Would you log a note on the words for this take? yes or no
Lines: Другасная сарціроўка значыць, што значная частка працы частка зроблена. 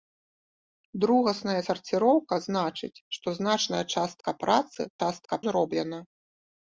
no